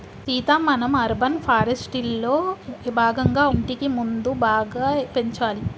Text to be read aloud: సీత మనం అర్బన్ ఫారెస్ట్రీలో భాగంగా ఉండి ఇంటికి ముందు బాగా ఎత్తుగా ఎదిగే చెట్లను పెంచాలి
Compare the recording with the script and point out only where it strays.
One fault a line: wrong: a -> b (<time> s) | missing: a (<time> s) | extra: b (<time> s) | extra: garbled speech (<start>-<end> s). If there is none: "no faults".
missing: ఉండి (3.4 s)
missing: ఎత్తుగా ఎదిగే చెట్లను (4.9 s)